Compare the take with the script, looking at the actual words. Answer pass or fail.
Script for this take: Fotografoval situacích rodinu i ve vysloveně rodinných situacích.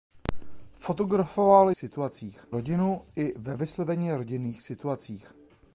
pass